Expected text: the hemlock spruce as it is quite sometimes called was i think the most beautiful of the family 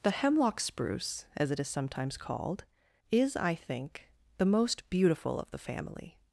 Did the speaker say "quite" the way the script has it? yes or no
no